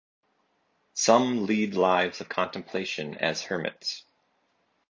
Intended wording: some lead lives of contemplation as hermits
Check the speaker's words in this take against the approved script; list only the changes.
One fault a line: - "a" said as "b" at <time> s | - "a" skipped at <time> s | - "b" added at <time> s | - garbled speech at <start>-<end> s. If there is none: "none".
none